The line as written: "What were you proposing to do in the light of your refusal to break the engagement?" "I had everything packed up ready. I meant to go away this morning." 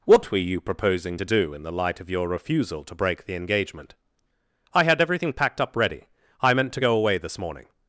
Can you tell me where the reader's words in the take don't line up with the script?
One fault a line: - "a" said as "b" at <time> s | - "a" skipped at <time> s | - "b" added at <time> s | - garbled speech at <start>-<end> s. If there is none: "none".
none